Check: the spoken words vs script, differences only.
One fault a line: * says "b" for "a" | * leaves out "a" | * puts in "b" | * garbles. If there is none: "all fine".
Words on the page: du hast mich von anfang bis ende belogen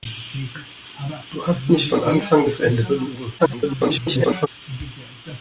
* garbles